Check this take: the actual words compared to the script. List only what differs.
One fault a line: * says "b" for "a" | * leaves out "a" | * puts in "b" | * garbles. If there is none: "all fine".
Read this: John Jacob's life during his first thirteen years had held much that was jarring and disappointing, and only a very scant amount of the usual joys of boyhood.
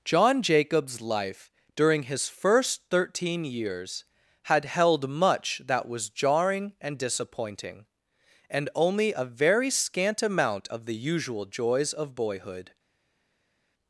all fine